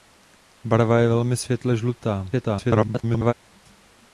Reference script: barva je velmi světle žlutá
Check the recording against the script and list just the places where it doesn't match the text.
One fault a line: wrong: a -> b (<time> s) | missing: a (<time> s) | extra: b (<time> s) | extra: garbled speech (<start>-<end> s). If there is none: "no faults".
extra: garbled speech (2.3-3.3 s)